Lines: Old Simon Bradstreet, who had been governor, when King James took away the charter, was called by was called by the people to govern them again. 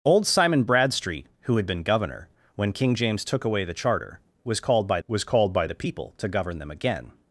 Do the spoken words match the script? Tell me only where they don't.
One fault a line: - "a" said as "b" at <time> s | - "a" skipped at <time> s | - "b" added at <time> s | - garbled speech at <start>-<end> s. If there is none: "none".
none